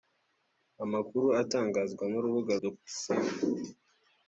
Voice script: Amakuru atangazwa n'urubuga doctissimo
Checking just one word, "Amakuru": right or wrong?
right